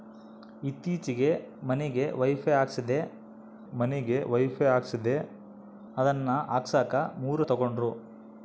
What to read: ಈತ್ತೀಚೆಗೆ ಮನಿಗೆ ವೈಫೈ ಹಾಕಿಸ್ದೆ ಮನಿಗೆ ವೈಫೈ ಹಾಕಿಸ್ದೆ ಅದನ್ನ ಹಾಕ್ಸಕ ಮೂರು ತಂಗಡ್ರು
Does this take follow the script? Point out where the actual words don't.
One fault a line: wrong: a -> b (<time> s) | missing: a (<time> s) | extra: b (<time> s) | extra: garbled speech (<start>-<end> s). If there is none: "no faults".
no faults